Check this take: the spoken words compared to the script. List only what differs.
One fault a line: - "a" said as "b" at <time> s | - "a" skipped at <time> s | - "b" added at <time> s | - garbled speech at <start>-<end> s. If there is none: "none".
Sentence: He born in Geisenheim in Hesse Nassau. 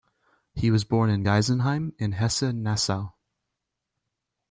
- "was" added at 0.7 s